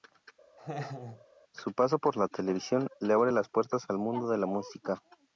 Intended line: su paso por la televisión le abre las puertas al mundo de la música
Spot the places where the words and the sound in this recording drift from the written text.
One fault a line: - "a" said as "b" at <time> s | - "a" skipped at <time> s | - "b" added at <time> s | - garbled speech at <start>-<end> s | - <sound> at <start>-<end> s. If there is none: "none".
- laugh at 0.6-1.3 s